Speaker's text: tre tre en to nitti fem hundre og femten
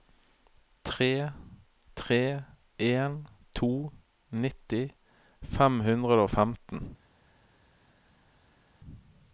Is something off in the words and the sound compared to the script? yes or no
no